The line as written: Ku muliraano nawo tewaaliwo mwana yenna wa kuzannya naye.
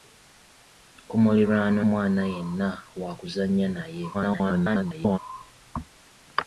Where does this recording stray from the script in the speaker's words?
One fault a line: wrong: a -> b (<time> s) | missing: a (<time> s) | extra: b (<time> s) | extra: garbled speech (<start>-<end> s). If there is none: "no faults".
missing: nawo tewaaliwo (1.8 s)
extra: garbled speech (4.1-5.2 s)